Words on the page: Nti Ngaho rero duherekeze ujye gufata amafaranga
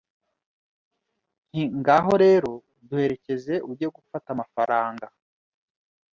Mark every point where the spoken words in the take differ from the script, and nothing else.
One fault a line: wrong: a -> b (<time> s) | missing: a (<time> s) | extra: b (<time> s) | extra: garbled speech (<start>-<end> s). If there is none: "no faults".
no faults